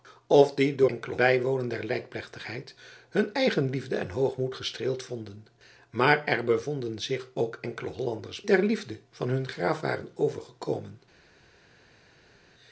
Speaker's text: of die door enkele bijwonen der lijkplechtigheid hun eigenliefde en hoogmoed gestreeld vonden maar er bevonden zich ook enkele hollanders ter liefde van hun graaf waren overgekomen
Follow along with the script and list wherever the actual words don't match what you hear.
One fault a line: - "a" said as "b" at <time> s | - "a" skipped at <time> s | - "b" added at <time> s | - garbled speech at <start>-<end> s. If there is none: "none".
none